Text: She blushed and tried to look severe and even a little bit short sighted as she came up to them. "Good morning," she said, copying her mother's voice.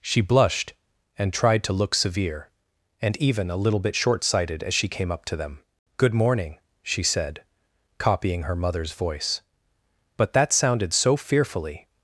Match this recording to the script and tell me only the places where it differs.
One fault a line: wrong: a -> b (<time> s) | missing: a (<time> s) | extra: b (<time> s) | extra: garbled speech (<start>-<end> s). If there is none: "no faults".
extra: But that sounded so fearfully (10.2 s)